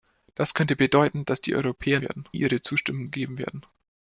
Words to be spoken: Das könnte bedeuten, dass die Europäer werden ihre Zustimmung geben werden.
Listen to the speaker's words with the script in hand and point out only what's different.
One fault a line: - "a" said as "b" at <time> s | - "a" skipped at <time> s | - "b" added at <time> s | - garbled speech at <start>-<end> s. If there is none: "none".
none